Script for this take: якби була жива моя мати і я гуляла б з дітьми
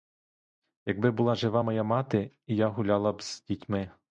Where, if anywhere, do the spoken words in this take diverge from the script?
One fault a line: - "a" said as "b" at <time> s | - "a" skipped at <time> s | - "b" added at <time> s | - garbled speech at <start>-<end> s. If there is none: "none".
none